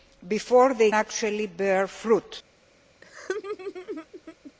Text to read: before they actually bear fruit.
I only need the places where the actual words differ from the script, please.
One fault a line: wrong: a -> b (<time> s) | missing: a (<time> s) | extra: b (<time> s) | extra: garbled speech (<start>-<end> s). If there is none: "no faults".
no faults